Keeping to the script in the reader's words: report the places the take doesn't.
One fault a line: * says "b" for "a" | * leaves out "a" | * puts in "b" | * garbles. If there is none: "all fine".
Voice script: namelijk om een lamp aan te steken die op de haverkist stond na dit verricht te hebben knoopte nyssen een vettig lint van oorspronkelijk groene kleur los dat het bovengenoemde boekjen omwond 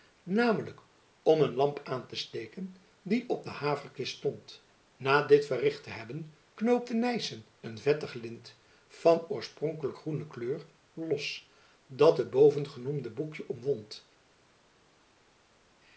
all fine